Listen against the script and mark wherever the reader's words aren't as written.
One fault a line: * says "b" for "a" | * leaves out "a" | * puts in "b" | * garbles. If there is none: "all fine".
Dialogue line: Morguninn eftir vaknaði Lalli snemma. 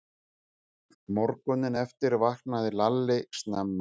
all fine